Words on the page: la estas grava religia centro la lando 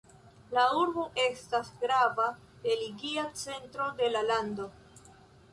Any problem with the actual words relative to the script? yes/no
yes